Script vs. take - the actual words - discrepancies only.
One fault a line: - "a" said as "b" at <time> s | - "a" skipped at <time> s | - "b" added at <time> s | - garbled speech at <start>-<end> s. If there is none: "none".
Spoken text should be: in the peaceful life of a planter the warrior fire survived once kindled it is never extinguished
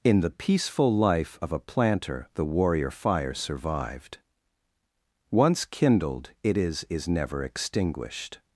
- "is" added at 6.9 s